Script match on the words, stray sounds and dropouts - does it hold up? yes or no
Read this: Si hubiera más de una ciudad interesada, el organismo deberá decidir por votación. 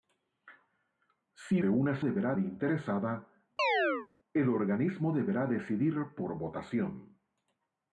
no